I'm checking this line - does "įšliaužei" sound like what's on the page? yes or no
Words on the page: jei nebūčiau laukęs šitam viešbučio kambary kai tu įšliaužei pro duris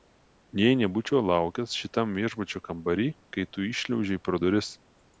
yes